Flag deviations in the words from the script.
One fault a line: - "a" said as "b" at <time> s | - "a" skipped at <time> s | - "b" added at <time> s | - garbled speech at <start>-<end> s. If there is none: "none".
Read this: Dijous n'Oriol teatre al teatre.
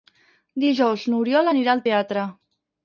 - "teatre" said as "anirà" at 1.5 s